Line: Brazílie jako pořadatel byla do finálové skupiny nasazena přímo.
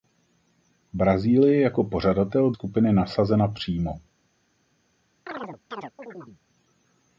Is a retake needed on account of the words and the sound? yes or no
yes